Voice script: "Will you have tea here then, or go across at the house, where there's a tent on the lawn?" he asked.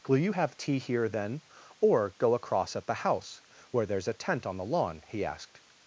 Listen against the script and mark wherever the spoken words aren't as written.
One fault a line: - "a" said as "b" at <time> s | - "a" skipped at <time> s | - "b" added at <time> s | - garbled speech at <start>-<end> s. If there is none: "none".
none